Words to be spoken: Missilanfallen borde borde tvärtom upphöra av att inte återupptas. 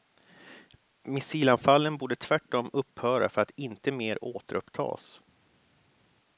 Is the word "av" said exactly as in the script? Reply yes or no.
no